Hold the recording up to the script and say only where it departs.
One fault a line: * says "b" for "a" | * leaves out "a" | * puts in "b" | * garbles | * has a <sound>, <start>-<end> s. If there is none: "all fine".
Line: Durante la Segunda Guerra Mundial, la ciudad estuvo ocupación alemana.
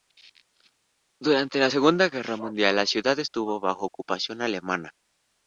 * puts in "bajo"